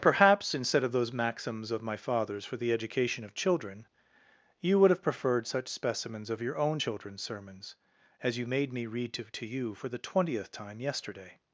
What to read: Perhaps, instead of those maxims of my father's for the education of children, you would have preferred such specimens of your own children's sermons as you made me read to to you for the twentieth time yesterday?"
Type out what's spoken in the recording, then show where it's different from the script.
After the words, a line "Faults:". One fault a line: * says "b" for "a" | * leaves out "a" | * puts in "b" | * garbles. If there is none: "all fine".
Perhaps, instead of those maxims of my father's for the education of children, you would have preferred such specimens of your own children's sermons as you made me read to to you for the twentieth time yesterday?"
Faults:
all fine